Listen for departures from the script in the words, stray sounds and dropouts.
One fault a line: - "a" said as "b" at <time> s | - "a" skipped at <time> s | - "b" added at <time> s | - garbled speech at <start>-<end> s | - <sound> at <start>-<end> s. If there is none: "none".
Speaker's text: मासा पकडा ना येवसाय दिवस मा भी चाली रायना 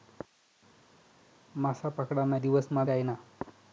- "येवसाय" skipped at 2.4 s
- "भी चाली" skipped at 2.8 s